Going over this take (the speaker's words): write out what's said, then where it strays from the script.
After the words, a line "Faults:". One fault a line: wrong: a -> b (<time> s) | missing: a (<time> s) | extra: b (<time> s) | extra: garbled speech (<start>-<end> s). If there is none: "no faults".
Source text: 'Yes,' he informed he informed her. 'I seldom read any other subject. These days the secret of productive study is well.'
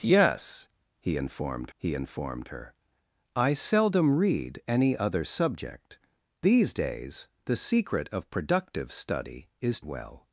'Yes,' he informed he informed her. 'I seldom read any other subject. These days the secret of productive study is well.'
Faults:
no faults